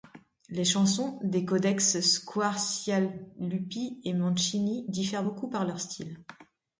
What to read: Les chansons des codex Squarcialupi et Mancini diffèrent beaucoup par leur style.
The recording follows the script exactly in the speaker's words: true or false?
true